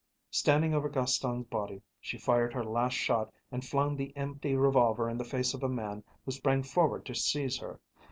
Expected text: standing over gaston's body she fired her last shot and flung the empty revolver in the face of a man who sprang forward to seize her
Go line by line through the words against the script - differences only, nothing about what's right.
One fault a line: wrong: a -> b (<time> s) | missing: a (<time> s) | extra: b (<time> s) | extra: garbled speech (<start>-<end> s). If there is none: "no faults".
no faults